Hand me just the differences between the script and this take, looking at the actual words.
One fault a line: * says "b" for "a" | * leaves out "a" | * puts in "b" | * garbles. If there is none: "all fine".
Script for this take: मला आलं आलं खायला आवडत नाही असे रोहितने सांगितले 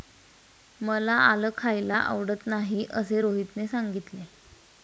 * leaves out "आलं"